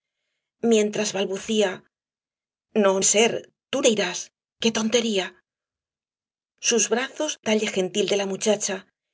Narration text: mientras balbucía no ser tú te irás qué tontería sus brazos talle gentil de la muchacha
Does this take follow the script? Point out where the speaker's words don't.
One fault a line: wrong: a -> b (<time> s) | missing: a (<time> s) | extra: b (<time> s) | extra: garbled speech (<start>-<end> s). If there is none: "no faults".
no faults